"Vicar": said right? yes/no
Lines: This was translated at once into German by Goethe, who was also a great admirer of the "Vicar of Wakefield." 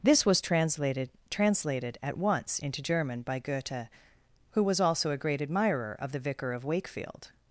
yes